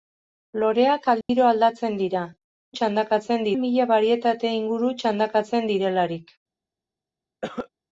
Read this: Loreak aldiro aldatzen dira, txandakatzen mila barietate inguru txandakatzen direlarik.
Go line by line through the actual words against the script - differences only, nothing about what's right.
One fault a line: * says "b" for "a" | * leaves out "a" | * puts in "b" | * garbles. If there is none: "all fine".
all fine